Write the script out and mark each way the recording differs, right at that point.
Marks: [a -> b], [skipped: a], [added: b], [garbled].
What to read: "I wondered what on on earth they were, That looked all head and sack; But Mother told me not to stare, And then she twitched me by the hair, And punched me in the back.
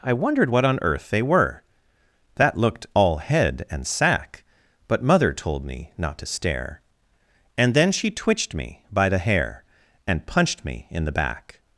"I wondered what on [skipped: on] earth they were, That looked all head and sack; But Mother told me not to stare, And then she twitched me by the hair, And punched me in the back.